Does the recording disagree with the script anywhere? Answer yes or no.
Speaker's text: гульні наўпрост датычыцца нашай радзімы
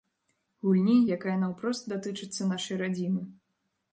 yes